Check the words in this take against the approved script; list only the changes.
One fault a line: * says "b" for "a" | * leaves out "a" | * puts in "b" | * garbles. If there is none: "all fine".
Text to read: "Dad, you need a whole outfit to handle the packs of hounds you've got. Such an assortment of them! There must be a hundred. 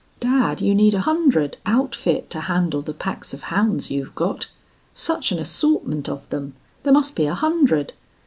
* says "hundred" for "whole"